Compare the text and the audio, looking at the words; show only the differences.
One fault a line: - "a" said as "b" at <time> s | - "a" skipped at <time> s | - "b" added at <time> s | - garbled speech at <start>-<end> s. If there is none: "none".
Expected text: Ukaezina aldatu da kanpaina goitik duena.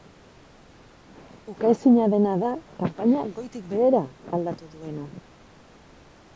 - "aldatu" said as "dena" at 2.1 s
- "behera aldatu" added at 3.8 s